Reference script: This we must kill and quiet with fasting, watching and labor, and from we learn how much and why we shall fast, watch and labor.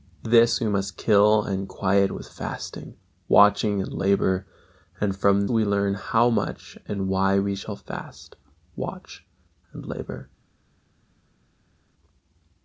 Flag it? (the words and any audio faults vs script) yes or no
no